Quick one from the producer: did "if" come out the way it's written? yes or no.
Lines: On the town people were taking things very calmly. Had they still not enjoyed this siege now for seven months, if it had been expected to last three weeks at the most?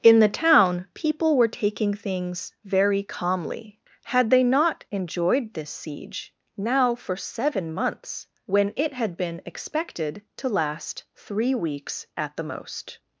no